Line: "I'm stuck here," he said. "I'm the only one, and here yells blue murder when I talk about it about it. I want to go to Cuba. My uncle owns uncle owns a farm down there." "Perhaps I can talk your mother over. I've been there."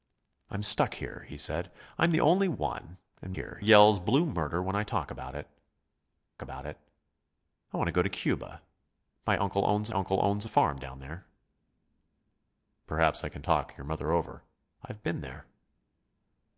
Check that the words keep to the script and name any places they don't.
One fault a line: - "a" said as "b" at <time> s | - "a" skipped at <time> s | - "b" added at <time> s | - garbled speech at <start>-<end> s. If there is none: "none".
none